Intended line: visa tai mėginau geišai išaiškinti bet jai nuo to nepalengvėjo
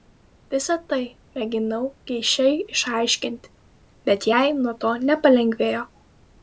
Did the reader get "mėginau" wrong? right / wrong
right